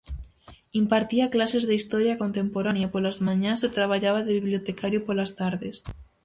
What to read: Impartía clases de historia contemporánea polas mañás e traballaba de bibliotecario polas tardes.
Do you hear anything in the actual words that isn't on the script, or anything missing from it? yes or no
no